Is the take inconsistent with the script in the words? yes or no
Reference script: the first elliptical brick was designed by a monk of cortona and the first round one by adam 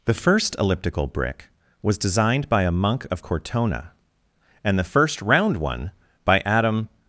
no